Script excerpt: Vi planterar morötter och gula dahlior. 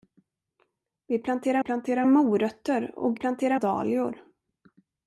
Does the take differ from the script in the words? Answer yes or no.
yes